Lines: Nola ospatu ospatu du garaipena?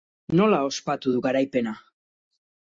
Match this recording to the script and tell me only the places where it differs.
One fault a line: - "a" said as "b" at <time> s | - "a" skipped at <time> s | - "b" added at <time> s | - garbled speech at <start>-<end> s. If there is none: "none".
- "ospatu" skipped at 1.1 s